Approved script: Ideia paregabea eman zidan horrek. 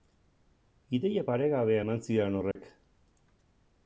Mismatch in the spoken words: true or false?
false